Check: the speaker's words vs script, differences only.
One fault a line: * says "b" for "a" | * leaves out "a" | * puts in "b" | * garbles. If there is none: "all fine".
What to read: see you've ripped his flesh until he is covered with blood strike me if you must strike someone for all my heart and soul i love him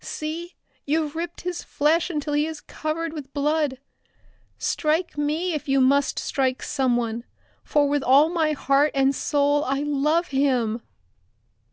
* puts in "with"